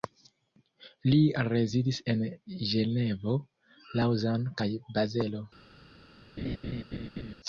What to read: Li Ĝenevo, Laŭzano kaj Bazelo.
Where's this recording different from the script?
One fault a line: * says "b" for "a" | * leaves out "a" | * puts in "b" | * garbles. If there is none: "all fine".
* puts in "rezidis en"